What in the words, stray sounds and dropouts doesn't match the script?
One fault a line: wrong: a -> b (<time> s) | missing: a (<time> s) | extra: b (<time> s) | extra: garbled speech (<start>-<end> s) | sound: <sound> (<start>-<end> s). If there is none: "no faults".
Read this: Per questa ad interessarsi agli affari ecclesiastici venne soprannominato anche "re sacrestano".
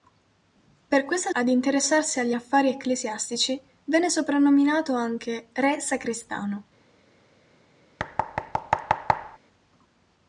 sound: thud (8.0-9.4 s)